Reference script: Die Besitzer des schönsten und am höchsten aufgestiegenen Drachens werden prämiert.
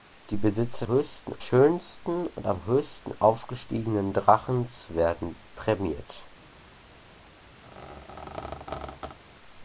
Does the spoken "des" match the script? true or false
false